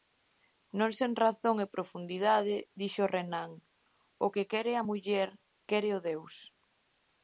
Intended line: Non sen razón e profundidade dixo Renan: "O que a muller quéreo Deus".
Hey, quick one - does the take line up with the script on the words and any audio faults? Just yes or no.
no